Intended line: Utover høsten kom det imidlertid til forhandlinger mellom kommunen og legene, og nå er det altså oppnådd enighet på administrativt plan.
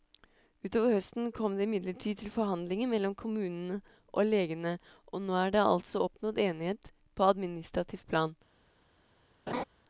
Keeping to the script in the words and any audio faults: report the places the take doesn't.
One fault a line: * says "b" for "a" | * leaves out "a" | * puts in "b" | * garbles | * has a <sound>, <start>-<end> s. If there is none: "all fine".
* has a laugh, 9.5-9.6 s